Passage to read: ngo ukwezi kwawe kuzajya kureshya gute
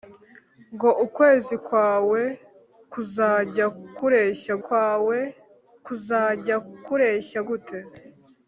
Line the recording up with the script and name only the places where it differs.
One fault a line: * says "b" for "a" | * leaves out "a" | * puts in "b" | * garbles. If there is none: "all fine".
* puts in "kwawe kuzajya kureshya"